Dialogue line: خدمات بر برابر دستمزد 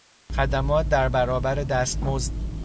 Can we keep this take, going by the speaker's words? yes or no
no